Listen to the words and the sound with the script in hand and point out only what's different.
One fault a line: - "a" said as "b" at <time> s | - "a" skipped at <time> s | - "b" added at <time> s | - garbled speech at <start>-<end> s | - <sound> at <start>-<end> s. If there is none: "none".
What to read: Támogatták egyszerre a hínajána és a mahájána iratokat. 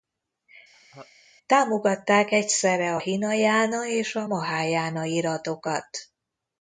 - laugh at 0.7-1.1 s